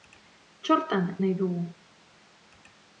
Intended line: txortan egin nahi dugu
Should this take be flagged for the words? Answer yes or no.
yes